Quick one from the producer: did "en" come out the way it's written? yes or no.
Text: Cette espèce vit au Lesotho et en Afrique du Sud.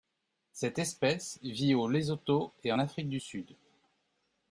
no